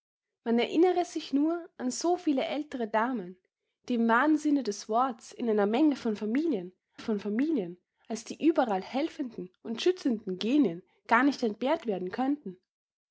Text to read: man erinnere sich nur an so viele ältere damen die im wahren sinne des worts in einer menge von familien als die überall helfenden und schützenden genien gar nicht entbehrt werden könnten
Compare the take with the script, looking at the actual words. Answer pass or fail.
fail